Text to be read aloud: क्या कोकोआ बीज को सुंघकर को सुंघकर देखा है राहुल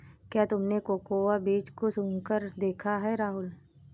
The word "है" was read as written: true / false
true